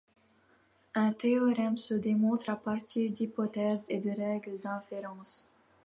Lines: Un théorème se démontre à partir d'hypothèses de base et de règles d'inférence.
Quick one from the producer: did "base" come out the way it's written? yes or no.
no